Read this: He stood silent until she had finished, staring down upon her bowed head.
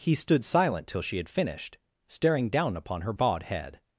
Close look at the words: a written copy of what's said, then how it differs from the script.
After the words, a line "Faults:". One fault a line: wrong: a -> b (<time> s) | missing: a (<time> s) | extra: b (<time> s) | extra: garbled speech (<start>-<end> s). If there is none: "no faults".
He stood silent till she had finished, staring down upon her bowed head.
Faults:
wrong: until -> till (0.9 s)